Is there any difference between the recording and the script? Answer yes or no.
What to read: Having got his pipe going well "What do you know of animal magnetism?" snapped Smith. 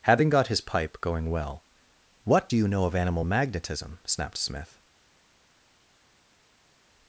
no